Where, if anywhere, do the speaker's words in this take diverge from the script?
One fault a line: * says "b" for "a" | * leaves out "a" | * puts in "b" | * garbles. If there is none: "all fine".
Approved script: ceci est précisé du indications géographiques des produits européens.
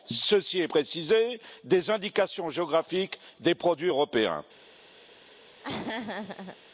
* says "des" for "du"